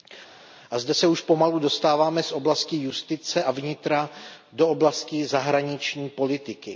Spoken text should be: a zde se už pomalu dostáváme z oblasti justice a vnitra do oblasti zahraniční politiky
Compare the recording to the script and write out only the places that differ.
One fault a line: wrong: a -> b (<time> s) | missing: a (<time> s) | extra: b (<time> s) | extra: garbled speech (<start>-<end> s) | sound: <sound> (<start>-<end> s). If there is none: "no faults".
no faults